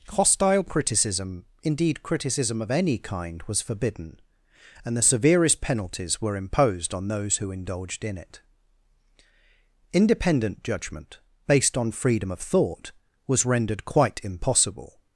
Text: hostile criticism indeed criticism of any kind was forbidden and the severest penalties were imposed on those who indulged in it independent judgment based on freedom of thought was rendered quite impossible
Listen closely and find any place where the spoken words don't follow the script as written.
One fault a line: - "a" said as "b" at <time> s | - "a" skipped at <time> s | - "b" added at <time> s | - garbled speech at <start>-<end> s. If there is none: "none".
none